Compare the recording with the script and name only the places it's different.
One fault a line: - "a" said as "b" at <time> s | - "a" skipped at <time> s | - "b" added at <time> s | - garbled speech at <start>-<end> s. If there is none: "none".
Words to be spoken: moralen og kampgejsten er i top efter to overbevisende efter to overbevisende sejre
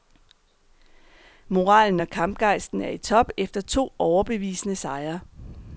- "efter to overbevisende" skipped at 4.8 s